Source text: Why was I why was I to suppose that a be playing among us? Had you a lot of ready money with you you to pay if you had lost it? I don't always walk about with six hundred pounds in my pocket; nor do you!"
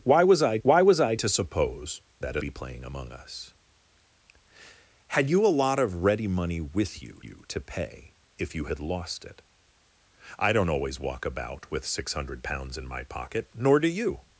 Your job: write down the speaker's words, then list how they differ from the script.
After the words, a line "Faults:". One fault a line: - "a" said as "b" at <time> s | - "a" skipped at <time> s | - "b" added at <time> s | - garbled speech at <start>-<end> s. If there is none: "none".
Why was I why was I to suppose that a be playing among us? Had you a lot of ready money with you you to pay if you had lost it? I don't always walk about with six hundred pounds in my pocket; nor do you!"
Faults:
none